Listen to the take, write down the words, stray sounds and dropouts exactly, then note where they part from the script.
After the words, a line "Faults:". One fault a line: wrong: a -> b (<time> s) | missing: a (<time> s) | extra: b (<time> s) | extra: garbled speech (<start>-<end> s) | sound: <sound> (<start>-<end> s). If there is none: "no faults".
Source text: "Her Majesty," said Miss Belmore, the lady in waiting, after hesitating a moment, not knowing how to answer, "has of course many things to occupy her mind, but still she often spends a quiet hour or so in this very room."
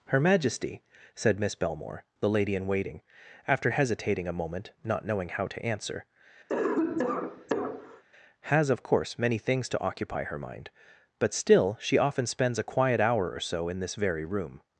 "Her Majesty," said Miss Belmore, the lady in waiting, after hesitating a moment, not knowing how to answer, "has of course many things to occupy her mind, but still she often spends a quiet hour or so in this very room."
Faults:
sound: cough (6.5-8.0 s)